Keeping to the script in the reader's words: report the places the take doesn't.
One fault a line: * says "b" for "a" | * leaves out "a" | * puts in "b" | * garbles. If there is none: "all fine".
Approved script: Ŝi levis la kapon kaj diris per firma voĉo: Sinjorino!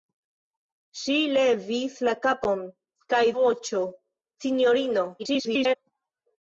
* leaves out "diris per firma"
* garbles